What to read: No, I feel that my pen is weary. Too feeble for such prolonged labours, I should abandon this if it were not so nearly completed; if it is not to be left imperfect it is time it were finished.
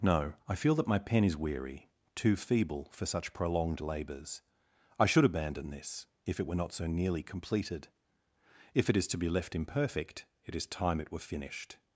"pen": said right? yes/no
yes